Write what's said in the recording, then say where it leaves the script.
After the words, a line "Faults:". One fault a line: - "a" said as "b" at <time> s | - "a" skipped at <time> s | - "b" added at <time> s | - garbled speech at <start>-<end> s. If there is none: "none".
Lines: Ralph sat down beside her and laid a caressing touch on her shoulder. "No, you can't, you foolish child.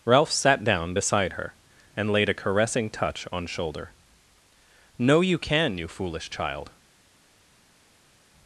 Ralph sat down beside her and laid a caressing touch on shoulder. "No, you can, you foolish child.
Faults:
- "her" skipped at 3.5 s
- "can't" said as "can" at 5.4 s